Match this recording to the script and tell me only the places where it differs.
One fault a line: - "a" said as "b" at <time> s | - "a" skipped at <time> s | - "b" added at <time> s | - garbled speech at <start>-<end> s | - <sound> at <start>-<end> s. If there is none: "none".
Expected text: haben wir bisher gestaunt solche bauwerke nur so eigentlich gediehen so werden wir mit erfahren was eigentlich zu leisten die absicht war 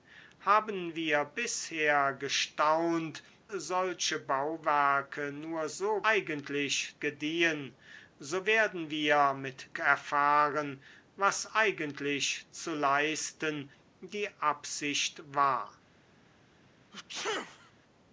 - sneeze at 16.9-17.7 s